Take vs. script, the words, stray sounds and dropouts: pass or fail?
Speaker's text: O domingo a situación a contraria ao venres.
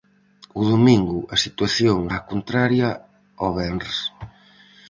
pass